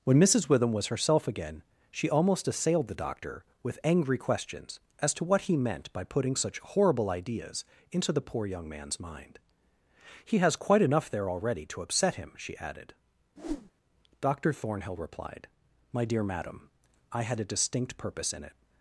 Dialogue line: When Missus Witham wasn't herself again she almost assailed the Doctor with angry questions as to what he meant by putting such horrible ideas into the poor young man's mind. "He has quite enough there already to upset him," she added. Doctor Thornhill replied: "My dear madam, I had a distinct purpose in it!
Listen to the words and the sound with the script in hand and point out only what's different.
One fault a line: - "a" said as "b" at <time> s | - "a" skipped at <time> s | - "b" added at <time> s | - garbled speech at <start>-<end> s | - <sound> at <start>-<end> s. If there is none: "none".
- "wasn't" said as "was" at 0.7 s
- whoosh at 13.4-13.7 s